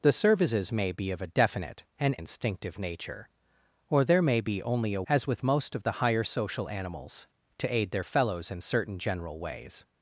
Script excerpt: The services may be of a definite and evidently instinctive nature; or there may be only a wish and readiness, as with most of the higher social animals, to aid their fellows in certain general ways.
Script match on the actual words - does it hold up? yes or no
no